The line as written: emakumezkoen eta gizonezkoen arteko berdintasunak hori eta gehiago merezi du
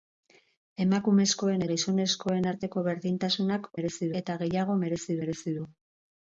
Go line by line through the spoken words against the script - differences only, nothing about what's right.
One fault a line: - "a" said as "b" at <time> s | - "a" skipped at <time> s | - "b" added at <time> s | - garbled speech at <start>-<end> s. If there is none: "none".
- "eta" skipped at 1.6 s
- "hori" said as "merezi" at 3.8 s
- "merezi" added at 5.2 s